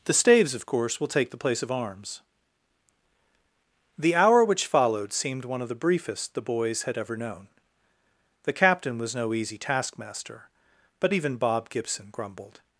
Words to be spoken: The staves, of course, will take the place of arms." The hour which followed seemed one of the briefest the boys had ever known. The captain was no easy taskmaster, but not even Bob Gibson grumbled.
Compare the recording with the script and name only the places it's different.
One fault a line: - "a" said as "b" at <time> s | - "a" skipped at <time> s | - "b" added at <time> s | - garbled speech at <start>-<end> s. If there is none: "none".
- "not" skipped at 11.1 s